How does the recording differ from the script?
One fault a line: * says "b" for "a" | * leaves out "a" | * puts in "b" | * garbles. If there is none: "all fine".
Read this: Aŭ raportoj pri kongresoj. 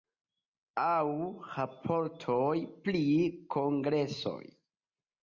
all fine